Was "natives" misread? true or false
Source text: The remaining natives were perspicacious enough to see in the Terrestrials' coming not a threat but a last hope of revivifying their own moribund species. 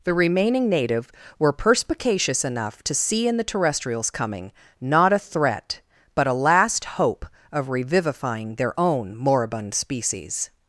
true